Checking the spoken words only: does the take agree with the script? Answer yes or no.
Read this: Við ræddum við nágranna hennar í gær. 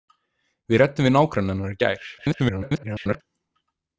no